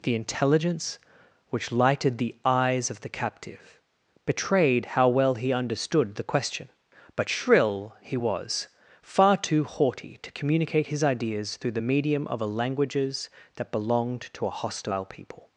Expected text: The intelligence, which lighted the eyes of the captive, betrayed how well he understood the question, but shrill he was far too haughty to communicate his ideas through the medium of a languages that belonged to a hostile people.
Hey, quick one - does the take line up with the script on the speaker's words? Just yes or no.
yes